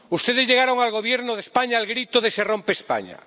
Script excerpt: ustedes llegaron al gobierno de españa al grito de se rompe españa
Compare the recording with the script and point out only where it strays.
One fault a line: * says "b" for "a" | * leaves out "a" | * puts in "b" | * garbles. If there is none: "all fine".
all fine